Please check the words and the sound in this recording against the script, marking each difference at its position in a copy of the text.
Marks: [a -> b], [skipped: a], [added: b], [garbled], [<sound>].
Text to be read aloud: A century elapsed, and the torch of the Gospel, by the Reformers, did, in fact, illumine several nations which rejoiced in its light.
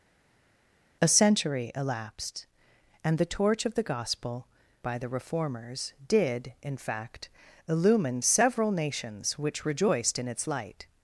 A century elapsed, and the torch of the Gospel, by the Reformers, did, in fact, illumine several nations which rejoiced in its light.